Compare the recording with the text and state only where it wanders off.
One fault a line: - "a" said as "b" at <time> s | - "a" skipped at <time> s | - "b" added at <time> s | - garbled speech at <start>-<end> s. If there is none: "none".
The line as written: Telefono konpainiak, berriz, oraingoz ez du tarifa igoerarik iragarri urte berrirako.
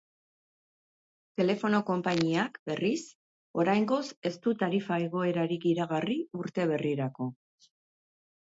none